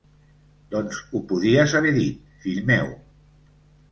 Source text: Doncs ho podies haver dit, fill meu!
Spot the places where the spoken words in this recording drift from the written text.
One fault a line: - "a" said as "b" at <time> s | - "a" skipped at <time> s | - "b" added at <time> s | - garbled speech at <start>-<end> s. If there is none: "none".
none